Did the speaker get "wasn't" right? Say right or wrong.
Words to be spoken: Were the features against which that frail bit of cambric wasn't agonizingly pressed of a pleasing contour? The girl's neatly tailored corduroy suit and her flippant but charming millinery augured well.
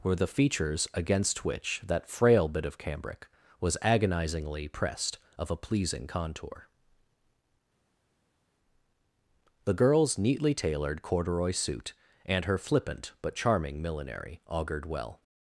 wrong